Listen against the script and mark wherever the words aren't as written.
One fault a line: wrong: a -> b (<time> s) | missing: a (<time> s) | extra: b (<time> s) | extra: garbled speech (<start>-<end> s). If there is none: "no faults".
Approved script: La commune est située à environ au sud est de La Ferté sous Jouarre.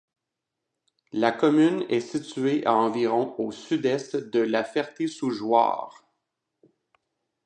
no faults